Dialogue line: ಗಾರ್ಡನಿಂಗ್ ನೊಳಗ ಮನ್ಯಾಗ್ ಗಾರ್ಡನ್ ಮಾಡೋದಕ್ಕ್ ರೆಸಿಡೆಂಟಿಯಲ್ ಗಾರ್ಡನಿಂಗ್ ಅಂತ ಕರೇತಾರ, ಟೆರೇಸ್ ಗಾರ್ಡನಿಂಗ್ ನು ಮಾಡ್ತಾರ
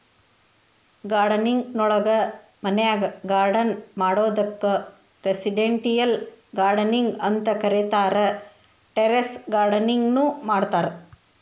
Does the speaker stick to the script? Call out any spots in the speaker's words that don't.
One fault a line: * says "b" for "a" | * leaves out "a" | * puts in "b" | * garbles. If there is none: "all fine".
all fine